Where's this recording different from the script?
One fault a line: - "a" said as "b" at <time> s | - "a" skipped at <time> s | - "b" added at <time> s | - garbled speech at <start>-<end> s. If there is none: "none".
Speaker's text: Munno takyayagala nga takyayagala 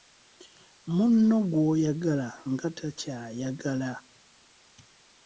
- "takyayagala" said as "gw'oyagala" at 1.5 s